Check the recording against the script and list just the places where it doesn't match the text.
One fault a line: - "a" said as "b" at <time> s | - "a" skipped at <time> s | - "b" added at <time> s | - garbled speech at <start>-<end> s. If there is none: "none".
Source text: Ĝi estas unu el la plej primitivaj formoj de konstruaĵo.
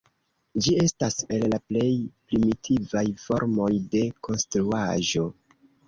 - "unu" skipped at 1.2 s